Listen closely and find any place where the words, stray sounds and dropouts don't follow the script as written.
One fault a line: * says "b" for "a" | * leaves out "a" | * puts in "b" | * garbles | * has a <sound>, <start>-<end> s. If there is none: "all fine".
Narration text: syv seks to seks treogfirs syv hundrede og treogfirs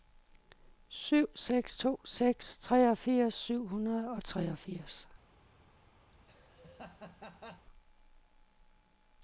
* has a laugh, 6.1-7.7 s